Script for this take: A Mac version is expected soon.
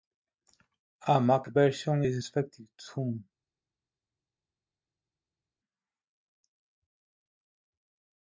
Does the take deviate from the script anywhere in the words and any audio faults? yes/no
no